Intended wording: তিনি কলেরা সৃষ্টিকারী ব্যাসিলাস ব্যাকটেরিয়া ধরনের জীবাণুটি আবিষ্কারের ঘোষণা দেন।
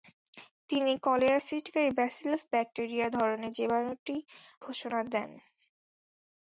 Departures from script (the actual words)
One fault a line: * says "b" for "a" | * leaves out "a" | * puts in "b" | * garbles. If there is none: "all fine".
* leaves out "আবিষ্কারের"